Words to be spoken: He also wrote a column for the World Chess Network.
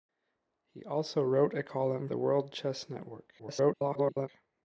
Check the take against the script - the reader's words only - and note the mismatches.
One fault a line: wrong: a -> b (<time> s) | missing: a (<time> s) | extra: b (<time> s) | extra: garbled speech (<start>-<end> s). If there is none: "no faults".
missing: for (2.1 s)
extra: garbled speech (3.4-4.3 s)